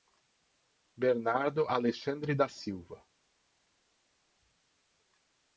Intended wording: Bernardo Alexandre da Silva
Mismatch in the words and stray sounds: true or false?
false